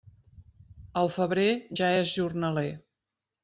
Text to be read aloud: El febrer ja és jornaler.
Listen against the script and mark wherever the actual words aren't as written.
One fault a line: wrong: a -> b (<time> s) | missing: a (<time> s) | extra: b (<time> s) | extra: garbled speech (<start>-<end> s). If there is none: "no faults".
no faults